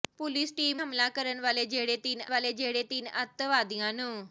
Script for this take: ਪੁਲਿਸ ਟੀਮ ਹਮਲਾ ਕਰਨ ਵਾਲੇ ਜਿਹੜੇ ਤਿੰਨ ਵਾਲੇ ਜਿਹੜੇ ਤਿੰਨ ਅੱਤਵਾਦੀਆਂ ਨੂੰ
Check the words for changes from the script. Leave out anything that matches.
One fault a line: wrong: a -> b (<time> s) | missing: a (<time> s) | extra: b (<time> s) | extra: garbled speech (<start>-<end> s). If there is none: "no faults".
no faults